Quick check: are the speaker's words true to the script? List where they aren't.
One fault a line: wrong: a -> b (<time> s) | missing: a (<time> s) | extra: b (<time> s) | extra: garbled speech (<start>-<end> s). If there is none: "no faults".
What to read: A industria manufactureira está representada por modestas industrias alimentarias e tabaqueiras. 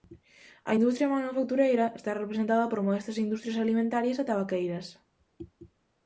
no faults